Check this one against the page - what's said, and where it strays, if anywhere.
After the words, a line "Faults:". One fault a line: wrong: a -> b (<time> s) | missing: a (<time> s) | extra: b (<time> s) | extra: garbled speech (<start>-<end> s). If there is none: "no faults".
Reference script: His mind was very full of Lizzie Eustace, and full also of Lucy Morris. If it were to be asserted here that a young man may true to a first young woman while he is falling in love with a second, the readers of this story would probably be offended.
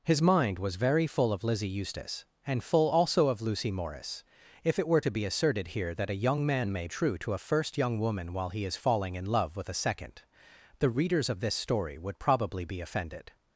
His mind was very full of Lizzie Eustace, and full also of Lucy Morris. If it were to be asserted here that a young man may true to a first young woman while he is falling in love with a second, the readers of this story would probably be offended.
Faults:
no faults